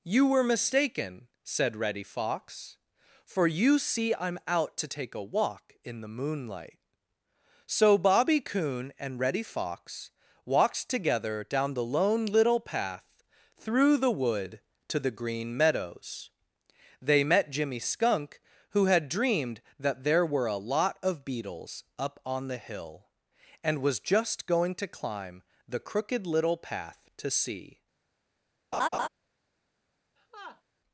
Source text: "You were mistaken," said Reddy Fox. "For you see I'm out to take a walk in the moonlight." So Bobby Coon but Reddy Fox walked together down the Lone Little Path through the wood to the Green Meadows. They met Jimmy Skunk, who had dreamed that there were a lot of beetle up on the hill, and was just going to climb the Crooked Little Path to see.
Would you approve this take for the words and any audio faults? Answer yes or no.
no